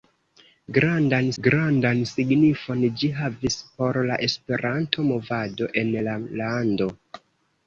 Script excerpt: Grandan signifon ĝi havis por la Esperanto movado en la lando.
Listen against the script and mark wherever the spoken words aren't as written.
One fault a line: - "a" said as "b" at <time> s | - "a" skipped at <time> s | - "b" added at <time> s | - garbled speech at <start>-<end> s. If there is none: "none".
- "grandan" added at 1.4 s